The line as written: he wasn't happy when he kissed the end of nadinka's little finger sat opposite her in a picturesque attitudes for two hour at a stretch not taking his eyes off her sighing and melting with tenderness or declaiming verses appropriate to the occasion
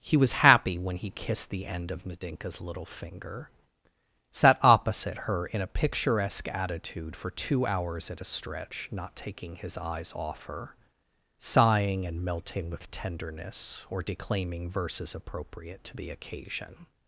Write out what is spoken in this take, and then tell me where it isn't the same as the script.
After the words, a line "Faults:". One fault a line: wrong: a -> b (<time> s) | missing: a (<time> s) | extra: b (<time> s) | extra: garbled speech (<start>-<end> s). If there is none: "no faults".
he was happy when he kissed the end of nadinka's little finger sat opposite her in a picturesque attitude for two hours at a stretch not taking his eyes off her sighing and melting with tenderness or declaiming verses appropriate to the occasion
Faults:
wrong: wasn't -> was (0.2 s)
wrong: attitudes -> attitude (6.5 s)
wrong: hour -> hours (7.7 s)